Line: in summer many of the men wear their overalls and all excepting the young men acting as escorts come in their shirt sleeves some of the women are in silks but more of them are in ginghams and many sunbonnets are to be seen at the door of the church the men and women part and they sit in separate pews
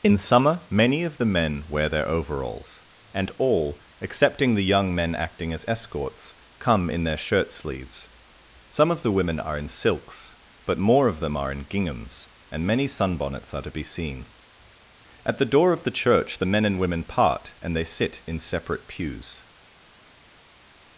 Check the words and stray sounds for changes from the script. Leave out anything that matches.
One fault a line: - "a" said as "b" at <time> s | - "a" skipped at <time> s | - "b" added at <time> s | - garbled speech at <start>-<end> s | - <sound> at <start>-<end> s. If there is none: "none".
none